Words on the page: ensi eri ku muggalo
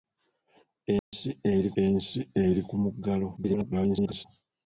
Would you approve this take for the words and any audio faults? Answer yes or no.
no